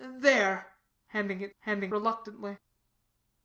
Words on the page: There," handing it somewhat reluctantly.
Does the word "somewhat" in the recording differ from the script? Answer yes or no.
yes